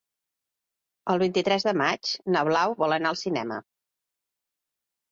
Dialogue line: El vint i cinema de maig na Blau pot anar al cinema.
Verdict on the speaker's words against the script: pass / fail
fail